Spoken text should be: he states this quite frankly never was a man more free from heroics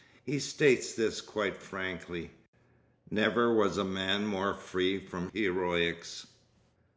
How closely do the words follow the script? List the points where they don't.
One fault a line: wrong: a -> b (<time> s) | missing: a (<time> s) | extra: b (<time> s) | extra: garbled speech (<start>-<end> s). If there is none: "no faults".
no faults